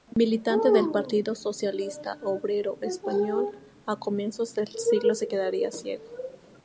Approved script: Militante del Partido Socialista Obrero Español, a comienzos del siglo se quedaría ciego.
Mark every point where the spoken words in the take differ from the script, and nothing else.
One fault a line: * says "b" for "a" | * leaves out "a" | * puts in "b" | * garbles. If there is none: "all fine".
all fine